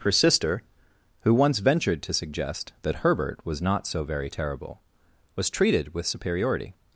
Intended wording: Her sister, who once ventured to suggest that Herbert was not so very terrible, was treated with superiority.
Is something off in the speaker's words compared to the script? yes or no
no